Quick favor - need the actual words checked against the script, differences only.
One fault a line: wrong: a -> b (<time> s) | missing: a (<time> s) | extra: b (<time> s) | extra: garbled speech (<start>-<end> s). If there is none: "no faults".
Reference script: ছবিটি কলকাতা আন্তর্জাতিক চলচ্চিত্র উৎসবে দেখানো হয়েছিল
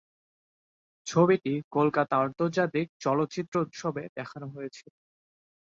no faults